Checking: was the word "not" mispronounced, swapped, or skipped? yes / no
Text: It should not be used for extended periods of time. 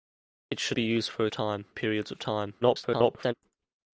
yes